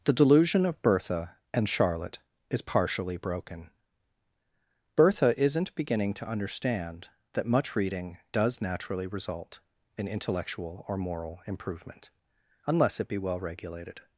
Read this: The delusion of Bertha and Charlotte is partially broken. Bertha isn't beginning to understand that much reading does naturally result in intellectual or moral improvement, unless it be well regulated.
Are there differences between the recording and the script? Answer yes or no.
no